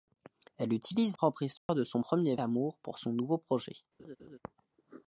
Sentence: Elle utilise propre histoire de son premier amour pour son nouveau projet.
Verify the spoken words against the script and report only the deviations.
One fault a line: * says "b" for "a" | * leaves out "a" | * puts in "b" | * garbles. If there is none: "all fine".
all fine